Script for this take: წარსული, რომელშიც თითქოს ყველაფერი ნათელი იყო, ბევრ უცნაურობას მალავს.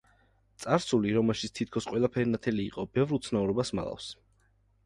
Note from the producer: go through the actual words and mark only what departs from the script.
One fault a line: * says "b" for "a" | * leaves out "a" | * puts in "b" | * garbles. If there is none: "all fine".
all fine